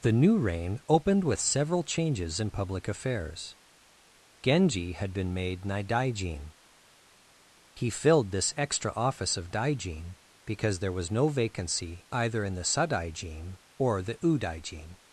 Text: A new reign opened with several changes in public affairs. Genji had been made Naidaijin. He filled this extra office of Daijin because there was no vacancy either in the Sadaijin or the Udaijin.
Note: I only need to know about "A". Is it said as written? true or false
false